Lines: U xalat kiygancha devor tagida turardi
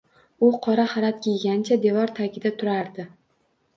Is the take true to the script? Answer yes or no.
no